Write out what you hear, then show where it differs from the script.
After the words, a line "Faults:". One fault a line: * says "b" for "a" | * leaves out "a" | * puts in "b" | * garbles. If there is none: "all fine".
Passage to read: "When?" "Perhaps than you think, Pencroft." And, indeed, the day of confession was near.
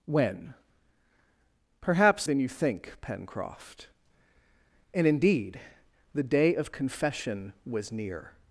"When?" "Perhaps than you think, Pencroft." And, indeed, the day of confession was near.
Faults:
all fine